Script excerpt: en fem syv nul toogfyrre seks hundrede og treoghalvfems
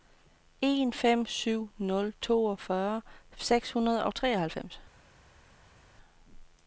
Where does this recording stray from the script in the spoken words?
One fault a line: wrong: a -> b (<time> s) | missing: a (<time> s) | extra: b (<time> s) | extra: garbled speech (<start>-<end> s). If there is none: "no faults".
no faults